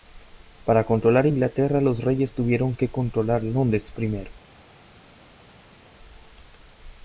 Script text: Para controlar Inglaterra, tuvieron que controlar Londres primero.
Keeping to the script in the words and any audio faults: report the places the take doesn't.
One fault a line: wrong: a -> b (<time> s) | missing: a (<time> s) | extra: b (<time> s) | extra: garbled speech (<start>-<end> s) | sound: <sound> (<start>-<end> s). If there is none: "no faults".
extra: los reyes (1.8 s)